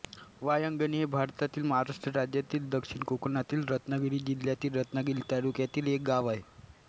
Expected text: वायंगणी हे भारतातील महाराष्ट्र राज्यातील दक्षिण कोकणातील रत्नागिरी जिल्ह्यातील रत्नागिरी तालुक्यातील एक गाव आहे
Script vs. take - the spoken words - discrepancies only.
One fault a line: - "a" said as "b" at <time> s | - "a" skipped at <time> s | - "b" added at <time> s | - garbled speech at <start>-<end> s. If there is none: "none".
none